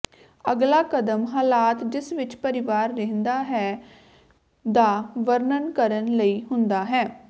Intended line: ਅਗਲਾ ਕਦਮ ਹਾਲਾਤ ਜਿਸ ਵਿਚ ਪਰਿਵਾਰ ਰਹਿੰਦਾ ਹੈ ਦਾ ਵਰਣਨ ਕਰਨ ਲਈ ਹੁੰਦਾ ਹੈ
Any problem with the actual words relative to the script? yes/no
no